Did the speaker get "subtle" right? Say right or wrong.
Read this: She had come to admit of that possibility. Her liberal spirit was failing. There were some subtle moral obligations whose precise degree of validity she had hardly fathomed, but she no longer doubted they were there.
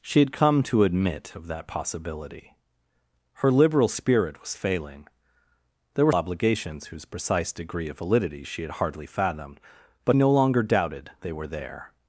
wrong